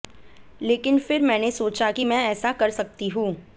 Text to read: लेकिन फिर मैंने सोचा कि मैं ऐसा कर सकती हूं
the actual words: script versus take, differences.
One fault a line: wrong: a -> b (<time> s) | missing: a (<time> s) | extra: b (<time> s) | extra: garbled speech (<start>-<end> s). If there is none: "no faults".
no faults